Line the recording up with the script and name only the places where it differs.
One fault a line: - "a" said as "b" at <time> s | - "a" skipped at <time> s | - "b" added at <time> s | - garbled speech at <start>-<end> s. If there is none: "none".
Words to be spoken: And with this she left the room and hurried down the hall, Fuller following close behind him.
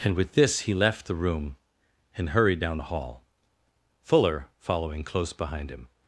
- "she" said as "he" at 0.6 s